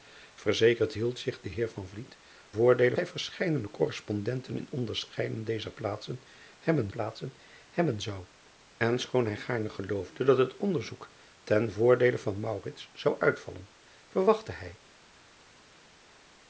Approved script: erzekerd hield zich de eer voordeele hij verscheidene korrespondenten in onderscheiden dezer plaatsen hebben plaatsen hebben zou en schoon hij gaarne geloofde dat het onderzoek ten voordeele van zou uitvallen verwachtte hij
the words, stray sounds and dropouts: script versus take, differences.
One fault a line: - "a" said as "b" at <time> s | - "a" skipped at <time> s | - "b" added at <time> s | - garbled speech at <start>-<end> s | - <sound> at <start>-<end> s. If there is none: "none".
none